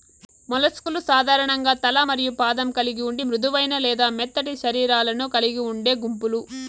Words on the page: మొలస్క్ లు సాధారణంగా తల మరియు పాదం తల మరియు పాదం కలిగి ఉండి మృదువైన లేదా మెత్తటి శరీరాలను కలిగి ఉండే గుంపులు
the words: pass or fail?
fail